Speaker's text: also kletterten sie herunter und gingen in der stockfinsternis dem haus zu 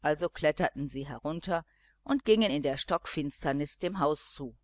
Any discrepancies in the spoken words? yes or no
no